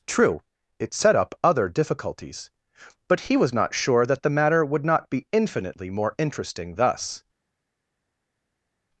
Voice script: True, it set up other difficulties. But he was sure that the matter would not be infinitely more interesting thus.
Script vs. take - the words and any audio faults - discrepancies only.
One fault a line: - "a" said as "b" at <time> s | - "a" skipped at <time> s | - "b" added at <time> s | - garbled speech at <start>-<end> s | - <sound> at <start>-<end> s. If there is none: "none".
- "not" added at 3.5 s